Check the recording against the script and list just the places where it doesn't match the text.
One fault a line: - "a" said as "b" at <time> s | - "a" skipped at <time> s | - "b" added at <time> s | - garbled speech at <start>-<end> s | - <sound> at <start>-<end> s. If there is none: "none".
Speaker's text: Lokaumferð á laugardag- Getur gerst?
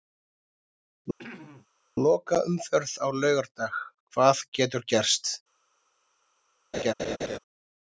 - throat clearing at 1.2-1.7 s
- "Hvað" added at 4.2 s
- laugh at 6.7-7.4 s